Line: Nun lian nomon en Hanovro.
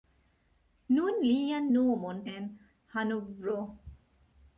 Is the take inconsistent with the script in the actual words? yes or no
no